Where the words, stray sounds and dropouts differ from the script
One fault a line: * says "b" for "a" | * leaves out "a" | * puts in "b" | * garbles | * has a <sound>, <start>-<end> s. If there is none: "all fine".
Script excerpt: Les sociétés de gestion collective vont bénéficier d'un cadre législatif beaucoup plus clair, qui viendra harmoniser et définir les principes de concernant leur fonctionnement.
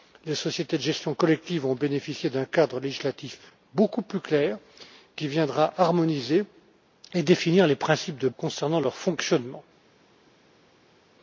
all fine